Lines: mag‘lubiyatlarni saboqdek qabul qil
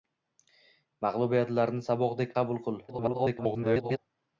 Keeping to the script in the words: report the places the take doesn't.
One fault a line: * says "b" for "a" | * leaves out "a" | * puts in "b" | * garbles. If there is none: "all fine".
* garbles